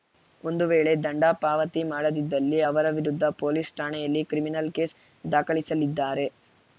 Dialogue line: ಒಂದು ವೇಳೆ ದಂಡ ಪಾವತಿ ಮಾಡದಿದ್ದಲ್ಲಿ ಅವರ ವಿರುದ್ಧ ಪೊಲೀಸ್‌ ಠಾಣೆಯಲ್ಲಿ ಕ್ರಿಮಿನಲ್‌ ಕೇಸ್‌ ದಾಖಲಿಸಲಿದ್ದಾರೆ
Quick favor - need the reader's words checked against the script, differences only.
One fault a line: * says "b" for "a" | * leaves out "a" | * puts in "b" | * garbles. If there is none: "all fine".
all fine